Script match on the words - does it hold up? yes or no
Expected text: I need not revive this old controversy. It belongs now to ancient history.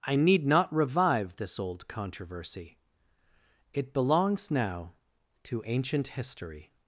yes